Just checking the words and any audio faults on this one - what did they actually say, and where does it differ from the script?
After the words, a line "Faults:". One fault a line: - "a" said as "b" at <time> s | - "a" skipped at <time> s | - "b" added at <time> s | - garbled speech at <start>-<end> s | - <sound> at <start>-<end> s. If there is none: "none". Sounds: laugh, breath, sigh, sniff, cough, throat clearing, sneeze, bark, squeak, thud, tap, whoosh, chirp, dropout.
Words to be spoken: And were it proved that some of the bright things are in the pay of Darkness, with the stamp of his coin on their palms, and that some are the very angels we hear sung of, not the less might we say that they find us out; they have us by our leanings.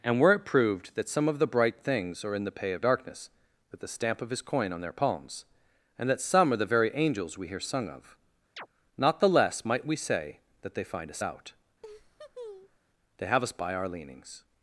And were it proved that some of the bright things are in the pay of Darkness, with the stamp of his coin on their palms, and that some are the very angels we hear sung of, not the less might we say that they find us out; they have us by our leanings.
Faults:
- chirp at 8.6-8.7 s
- laugh at 11.8-12.8 s